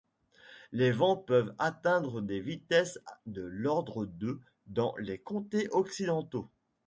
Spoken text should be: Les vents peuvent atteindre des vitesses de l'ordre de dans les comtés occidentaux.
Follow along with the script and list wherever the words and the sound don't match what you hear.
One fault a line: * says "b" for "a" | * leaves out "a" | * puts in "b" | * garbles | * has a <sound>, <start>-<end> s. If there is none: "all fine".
all fine